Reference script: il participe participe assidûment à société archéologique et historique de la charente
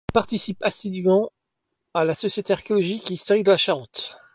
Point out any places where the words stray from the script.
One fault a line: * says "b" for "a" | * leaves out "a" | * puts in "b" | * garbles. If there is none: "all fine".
* leaves out "participe"
* puts in "la"